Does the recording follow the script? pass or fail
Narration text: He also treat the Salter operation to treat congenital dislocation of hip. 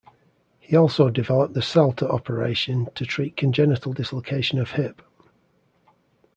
fail